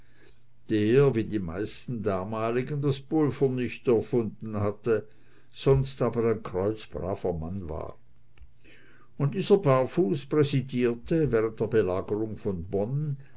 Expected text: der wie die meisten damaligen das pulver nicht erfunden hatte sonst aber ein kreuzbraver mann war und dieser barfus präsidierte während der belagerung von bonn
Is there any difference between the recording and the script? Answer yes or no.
no